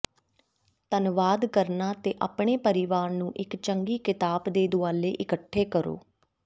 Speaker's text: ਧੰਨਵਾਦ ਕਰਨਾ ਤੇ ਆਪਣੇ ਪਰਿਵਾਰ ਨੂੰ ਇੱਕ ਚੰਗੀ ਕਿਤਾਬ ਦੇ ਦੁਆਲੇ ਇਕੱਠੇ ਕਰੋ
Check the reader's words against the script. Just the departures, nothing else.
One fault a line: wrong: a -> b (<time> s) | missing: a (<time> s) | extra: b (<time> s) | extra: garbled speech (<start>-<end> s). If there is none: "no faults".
no faults